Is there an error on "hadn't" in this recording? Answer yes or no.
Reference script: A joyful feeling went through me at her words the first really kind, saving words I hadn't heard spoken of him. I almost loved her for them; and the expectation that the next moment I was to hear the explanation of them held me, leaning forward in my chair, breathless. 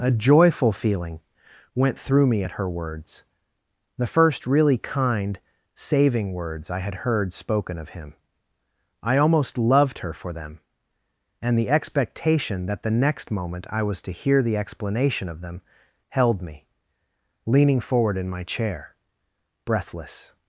yes